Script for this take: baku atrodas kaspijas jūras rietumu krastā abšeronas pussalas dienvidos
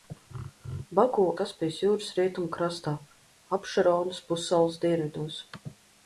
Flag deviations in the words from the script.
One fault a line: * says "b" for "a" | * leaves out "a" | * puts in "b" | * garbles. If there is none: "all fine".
* leaves out "atrodas"